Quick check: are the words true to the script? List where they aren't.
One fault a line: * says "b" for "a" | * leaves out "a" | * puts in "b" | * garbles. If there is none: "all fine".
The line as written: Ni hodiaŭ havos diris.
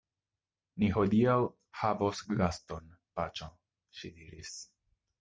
* puts in "gaston paĉjo ŝi"